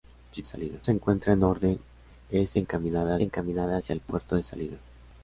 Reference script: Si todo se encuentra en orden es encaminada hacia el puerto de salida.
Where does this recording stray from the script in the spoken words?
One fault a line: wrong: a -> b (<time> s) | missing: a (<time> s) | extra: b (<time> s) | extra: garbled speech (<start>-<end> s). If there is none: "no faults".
wrong: todo -> salida (0.4 s)
extra: encaminada (3.2 s)